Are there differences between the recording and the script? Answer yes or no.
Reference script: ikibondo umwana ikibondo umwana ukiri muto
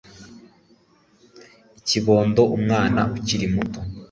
yes